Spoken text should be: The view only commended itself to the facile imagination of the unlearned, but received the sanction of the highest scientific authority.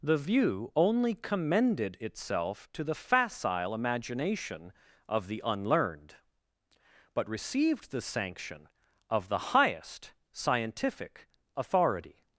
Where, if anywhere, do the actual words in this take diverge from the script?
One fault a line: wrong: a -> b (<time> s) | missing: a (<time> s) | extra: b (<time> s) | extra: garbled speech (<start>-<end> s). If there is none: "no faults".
no faults